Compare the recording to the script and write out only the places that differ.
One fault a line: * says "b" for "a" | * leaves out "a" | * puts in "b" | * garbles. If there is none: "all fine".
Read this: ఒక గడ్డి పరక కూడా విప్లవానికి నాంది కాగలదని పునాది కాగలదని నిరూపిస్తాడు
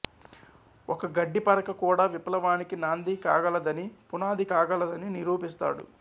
all fine